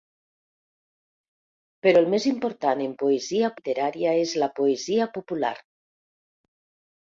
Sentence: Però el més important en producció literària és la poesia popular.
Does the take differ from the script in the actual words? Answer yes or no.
yes